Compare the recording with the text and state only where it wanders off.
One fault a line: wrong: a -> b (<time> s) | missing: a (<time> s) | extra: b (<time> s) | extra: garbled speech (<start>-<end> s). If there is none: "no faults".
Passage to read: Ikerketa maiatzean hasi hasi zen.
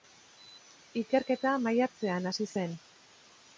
missing: hasi (2.5 s)